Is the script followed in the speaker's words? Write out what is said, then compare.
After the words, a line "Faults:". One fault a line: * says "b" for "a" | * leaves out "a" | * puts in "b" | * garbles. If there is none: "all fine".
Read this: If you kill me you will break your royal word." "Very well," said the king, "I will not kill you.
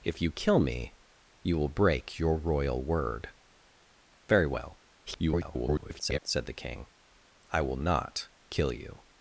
If you kill me you will break your royal word." "Very well," [garbled] said the king, "I will not kill you.
Faults:
* garbles